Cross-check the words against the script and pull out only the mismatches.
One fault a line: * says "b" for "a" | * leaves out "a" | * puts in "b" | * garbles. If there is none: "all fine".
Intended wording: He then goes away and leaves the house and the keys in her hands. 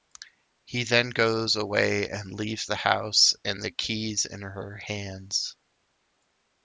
all fine